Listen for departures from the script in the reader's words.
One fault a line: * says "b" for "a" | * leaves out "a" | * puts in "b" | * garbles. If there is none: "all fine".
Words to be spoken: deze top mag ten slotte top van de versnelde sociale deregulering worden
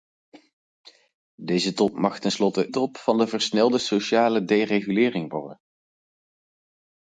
all fine